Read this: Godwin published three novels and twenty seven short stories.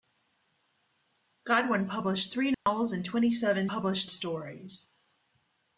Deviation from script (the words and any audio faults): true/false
true